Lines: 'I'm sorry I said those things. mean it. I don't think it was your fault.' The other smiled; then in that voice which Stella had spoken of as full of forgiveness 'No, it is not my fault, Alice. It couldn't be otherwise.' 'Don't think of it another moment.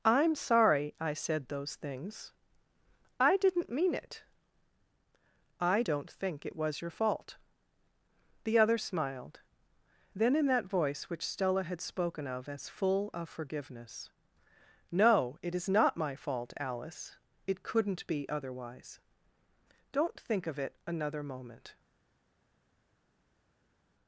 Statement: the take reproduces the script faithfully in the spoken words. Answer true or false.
false